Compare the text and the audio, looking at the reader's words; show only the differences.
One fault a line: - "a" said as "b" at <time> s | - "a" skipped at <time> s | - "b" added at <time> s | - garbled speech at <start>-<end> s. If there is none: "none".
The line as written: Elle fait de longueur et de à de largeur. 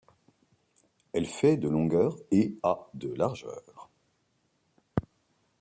- "de" skipped at 2.5 s